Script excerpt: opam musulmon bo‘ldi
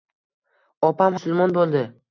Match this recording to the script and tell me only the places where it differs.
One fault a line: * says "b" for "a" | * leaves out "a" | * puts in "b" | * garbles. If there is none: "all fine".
all fine